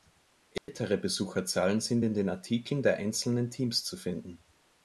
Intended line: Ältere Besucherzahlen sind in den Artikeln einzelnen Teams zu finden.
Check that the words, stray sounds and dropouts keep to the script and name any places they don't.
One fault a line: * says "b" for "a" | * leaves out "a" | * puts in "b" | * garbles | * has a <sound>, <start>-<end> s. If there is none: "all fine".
* has a dropout, 0.6-0.7 s
* puts in "der"